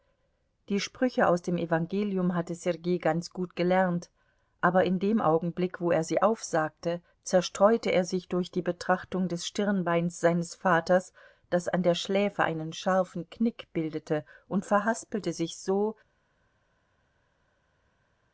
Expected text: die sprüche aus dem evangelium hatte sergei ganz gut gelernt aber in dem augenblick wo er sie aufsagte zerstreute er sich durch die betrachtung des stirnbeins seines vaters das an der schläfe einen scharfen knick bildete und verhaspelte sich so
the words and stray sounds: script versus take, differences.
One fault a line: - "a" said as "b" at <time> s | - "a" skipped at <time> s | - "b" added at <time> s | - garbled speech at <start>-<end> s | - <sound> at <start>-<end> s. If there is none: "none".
none